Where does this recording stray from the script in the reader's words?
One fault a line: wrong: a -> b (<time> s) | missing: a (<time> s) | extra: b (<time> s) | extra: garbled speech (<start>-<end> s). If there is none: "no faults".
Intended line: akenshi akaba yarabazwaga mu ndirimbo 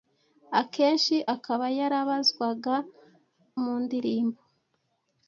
no faults